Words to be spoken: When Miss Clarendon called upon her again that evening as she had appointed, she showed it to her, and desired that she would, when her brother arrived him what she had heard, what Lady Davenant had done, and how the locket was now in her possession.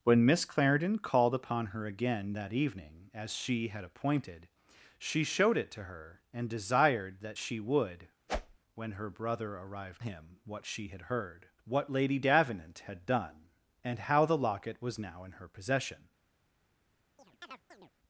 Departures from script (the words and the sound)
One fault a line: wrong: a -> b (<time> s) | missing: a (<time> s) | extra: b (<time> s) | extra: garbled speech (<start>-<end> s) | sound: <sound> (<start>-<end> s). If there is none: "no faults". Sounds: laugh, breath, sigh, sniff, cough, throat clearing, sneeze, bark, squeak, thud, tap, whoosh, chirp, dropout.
sound: whoosh (8.3-8.6 s)
sound: chirp (17.2-17.9 s)